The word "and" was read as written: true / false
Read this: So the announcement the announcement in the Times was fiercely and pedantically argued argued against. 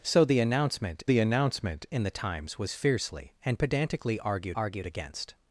true